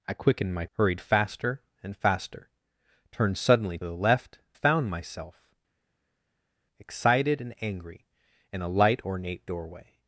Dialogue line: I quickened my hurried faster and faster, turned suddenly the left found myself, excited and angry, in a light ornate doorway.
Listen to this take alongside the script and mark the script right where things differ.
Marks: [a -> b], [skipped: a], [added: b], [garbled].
I quickened my hurried faster and faster, turned suddenly the left found myself, excited and angry, in a light ornate doorway.